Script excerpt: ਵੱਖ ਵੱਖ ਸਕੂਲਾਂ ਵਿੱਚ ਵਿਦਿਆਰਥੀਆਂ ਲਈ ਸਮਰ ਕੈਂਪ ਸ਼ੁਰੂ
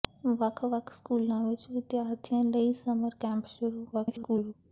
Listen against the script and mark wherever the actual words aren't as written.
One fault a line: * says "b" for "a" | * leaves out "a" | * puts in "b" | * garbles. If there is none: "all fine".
* garbles